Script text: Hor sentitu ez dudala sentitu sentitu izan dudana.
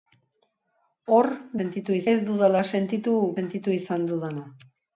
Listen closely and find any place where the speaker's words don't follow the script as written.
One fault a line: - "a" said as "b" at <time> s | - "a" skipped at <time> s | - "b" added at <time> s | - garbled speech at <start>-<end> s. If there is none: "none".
none